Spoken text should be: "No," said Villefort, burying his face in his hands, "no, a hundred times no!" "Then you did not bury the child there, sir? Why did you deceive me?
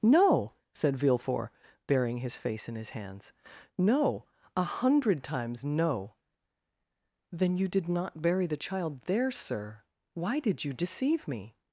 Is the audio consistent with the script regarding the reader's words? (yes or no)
yes